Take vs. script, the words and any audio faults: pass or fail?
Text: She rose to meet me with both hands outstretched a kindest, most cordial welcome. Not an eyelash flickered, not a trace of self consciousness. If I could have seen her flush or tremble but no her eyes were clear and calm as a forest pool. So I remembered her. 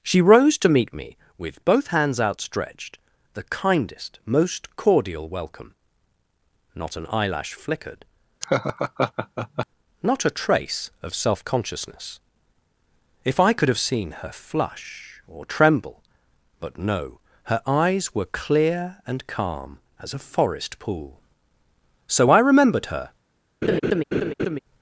fail